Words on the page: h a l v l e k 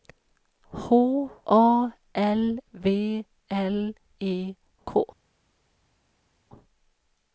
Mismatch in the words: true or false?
false